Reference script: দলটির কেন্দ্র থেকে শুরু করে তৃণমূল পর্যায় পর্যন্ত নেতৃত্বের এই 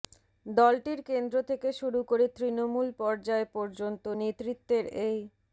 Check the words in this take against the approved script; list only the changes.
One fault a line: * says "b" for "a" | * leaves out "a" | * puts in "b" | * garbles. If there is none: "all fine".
all fine